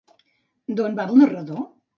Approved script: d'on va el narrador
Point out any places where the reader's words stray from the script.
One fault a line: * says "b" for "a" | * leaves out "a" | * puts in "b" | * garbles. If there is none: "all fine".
all fine